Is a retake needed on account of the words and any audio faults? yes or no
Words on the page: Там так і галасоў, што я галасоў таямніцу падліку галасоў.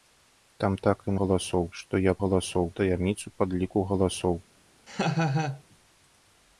yes